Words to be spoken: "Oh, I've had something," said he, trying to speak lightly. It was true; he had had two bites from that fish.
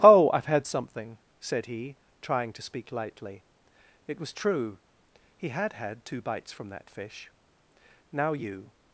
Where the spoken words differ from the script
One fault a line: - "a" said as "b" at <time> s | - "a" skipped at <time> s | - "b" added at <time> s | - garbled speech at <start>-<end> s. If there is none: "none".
- "Now you" added at 8.1 s